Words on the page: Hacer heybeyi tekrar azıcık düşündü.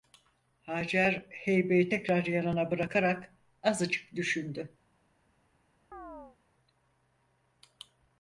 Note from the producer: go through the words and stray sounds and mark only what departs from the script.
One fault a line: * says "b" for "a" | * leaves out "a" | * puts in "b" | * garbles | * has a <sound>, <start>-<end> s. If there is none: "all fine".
* puts in "yanına bırakarak"
* has a chirp, 5.9-6.4 s